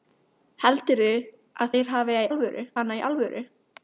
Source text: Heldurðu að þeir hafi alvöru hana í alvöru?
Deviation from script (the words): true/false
false